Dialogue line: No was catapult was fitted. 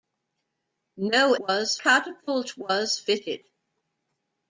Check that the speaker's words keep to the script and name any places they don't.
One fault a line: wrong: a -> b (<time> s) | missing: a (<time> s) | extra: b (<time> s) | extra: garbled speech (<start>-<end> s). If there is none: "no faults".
no faults